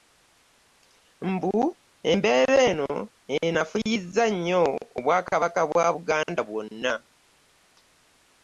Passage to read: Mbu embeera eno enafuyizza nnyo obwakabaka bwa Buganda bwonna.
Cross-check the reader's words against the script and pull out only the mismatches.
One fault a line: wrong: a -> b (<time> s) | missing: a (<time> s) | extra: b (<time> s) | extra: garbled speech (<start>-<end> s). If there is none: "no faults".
no faults